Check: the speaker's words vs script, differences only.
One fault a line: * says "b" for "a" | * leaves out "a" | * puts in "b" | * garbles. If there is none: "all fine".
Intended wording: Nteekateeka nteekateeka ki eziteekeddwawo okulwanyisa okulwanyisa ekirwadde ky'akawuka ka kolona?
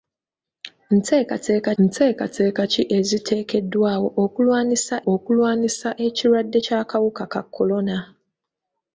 all fine